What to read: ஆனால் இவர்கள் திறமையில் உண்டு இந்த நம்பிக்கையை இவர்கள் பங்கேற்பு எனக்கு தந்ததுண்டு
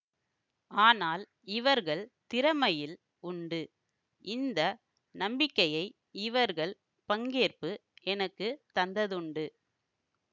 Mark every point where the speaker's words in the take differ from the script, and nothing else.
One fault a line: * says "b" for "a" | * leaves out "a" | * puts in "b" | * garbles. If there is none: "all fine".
all fine